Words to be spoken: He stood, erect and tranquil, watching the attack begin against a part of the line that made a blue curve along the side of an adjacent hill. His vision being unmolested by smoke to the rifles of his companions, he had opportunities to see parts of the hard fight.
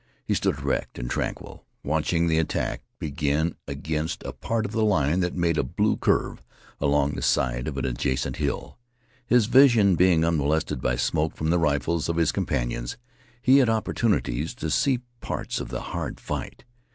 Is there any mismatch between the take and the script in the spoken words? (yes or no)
yes